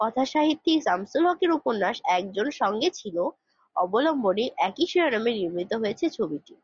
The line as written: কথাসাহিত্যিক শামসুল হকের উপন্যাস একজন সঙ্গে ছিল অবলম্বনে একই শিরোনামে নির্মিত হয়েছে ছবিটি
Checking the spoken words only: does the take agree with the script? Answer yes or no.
yes